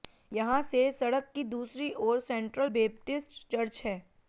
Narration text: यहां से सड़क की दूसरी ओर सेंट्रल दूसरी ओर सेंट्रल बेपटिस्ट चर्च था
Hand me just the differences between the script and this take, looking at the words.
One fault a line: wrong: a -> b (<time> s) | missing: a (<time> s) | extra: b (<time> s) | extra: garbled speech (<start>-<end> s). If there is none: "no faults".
missing: दूसरी ओर सेंट्रल (2.7 s)
wrong: था -> है (3.8 s)